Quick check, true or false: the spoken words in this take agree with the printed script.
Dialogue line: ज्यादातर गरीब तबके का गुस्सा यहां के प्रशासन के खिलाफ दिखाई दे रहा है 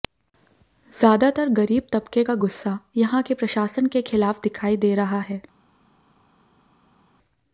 true